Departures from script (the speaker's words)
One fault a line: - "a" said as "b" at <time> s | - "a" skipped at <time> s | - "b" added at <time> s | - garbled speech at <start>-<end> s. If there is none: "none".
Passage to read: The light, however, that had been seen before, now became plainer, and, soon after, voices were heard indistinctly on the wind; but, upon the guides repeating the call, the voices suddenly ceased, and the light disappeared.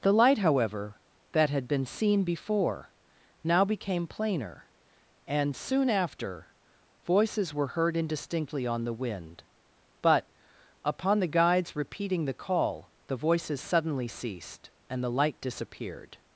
none